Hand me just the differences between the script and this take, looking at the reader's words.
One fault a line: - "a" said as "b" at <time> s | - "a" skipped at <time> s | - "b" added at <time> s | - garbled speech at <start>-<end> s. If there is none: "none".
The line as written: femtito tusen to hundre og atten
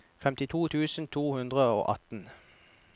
none